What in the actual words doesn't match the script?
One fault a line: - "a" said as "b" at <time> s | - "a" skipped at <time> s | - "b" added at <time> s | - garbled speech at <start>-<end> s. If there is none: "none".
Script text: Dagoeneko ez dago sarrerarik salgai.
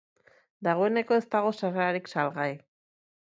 none